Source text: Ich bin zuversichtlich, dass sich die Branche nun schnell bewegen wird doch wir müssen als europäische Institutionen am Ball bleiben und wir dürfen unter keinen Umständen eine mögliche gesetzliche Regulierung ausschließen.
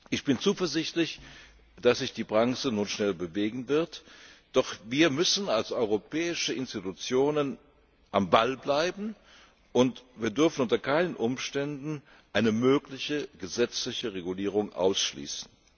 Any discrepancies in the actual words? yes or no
no